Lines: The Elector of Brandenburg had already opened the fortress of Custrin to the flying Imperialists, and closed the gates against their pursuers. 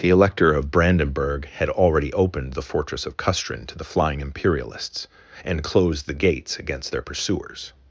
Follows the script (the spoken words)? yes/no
yes